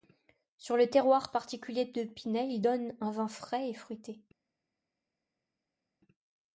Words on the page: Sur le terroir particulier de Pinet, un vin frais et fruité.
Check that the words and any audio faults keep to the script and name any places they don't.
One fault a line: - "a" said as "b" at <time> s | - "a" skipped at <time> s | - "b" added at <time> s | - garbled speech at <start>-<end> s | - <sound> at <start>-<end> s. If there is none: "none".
- "il donne" added at 2.5 s